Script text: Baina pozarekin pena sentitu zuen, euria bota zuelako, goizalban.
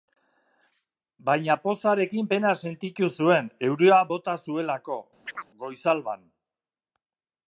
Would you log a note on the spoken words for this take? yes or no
no